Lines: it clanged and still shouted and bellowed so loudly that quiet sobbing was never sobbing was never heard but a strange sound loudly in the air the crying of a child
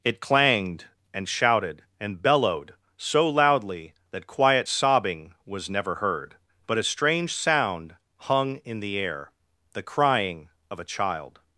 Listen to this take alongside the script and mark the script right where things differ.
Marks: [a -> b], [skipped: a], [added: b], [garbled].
it clanged and [skipped: still] shouted and bellowed so loudly that quiet sobbing was never [skipped: sobbing was never] heard but a strange sound [loudly -> hung] in the air the crying of a child